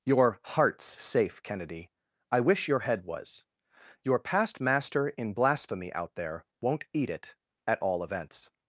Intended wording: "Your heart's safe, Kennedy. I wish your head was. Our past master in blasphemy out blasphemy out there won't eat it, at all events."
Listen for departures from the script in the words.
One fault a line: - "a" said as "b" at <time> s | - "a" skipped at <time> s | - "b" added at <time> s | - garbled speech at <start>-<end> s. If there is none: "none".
- "Our" said as "Your" at 4.0 s
- "blasphemy out" skipped at 6.1 s